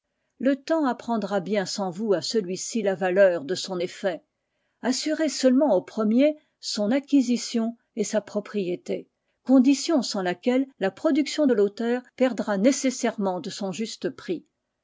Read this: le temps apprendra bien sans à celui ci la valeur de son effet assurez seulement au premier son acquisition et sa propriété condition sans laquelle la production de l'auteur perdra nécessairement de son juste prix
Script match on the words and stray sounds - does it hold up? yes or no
no